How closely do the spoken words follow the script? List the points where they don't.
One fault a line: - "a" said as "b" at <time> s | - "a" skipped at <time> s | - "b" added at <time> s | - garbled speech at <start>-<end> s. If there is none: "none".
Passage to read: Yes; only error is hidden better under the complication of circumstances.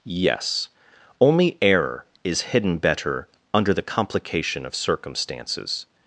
none